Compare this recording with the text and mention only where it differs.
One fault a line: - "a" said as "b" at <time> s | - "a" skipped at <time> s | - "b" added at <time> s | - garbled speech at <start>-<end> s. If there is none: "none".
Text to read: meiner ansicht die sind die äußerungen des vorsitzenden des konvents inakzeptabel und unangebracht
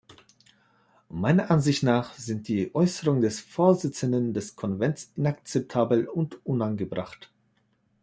- "die" said as "nach" at 1.8 s